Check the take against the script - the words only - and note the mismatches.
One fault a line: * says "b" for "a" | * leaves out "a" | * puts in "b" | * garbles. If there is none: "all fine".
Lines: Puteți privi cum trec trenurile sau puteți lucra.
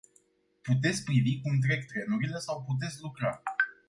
all fine